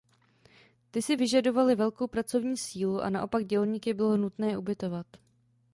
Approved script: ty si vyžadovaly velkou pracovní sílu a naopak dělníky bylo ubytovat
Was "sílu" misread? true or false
false